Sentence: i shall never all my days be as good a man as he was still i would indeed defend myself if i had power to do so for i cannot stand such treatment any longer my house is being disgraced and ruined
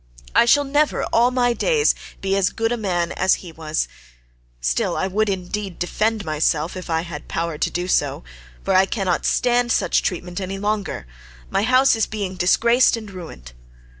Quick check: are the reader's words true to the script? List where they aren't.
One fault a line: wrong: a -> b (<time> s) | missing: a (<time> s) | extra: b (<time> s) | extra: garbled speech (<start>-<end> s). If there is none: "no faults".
no faults